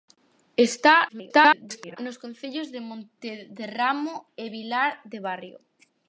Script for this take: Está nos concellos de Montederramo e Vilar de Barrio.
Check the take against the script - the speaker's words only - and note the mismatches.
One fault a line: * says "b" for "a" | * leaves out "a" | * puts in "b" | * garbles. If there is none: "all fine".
* garbles